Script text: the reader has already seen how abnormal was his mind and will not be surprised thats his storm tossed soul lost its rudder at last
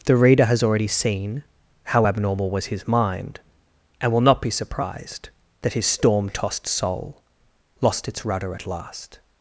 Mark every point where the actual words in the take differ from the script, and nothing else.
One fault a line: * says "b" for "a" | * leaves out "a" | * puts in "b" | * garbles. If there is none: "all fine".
* says "that" for "thats"